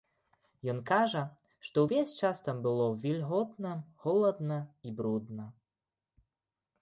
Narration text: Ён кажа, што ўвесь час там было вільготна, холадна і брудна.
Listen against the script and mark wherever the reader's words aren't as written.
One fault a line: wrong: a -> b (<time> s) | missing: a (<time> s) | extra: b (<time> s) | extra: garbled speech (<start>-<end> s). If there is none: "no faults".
no faults